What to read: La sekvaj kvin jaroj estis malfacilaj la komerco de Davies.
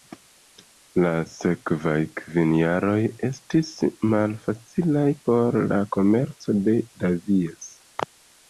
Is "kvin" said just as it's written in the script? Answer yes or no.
yes